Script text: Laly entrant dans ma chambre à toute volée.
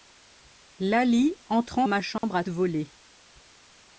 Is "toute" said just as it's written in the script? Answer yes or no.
no